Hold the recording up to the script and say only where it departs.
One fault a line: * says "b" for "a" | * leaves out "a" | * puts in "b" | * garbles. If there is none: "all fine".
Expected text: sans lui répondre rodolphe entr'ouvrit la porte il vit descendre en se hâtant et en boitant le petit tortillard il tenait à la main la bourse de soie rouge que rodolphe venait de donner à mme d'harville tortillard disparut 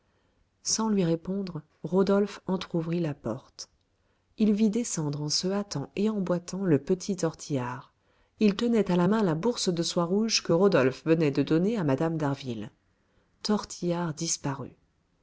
all fine